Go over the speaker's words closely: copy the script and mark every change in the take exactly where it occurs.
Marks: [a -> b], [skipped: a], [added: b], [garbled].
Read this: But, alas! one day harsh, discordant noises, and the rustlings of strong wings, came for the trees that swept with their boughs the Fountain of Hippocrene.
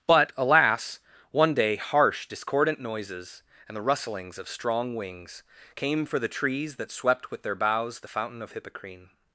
But, alas! one day harsh, discordant noises, and the rustlings of strong wings, came for the trees that swept with their boughs the Fountain of Hippocrene.